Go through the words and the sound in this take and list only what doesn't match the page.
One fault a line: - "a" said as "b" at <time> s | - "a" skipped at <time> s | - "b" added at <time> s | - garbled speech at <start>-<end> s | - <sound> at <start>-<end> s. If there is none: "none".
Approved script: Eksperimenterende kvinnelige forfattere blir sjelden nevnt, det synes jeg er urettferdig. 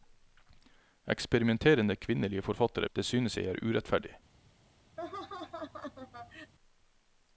- "blir sjelden nevnt" skipped at 2.9 s
- laugh at 5.0-6.5 s